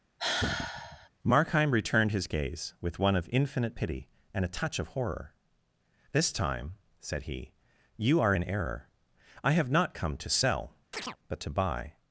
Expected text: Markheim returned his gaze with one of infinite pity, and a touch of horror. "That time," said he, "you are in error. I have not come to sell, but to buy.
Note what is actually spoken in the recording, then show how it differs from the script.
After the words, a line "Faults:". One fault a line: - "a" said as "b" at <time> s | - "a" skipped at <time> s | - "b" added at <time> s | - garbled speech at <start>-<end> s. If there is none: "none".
Markheim returned his gaze with one of infinite pity, and a touch of horror. "This time," said he, "you are in error. I have not come to sell, but to buy.
Faults:
- "That" said as "This" at 6.1 s